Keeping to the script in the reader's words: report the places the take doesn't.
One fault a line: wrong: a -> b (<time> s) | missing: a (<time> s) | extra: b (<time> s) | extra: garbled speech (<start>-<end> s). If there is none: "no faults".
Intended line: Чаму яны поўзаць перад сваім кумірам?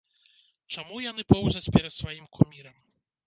no faults